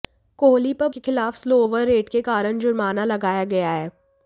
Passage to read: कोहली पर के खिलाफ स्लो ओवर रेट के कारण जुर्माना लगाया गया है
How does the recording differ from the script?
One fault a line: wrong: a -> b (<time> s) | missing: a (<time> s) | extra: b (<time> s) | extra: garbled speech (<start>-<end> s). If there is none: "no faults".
no faults